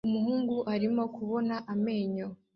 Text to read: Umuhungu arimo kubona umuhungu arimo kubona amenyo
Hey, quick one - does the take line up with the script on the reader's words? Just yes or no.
no